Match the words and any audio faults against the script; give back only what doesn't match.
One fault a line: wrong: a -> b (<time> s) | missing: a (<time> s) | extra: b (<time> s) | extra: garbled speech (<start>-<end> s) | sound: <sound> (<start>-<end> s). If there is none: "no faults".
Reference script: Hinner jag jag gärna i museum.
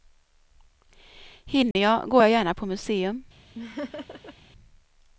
sound: dropout (1.7-1.8 s)
extra: går (2.1 s)
wrong: i -> på (2.5 s)
sound: laugh (3.5-4.3 s)